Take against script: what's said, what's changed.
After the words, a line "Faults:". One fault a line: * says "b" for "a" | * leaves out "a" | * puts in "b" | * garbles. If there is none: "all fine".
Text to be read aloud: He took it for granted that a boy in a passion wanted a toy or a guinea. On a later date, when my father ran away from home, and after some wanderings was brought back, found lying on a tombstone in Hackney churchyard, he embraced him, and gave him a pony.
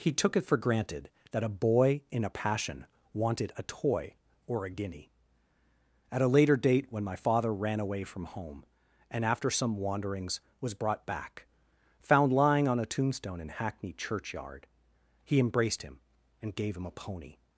He took it for granted that a boy in a passion wanted a toy or a guinea. At a later date, when my father ran away from home, and after some wanderings was brought back, found lying on a tombstone in Hackney churchyard, he embraced him, and gave him a pony.
Faults:
* says "At" for "On"